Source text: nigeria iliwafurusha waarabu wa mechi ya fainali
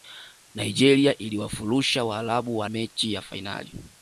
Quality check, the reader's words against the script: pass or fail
pass